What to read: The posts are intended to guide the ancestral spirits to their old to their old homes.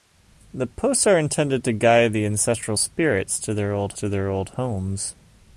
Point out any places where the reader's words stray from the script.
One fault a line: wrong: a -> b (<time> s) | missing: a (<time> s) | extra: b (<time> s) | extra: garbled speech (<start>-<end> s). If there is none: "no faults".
no faults